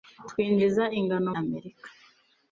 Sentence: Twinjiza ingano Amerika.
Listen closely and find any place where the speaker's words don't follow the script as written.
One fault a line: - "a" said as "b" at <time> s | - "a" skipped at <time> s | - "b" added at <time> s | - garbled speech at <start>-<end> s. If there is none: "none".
none